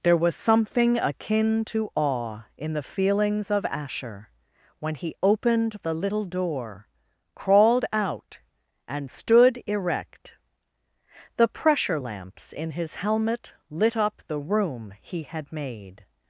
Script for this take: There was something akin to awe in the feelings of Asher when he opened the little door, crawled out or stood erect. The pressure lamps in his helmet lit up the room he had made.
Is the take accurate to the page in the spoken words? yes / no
no